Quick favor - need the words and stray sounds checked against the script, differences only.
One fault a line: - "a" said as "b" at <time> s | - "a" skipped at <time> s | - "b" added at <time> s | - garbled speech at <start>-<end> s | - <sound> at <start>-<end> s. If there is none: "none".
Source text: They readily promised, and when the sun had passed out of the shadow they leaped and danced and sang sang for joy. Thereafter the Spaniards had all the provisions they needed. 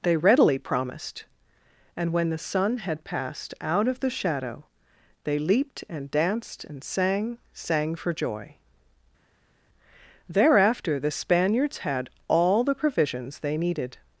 none